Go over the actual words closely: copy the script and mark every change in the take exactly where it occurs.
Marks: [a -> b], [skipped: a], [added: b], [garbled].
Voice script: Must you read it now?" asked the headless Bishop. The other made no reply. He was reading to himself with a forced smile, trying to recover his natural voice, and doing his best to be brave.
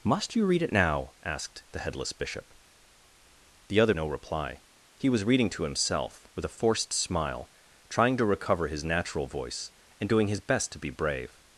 Must you read it now?" asked the headless Bishop. The other [skipped: made] no reply. He was reading to himself with a forced smile, trying to recover his natural voice, and doing his best to be brave.